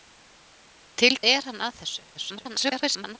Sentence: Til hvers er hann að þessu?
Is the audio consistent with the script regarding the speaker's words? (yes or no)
no